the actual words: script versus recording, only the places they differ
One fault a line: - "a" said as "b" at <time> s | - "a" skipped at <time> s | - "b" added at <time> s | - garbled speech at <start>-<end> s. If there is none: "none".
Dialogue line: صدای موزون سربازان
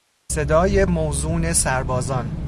none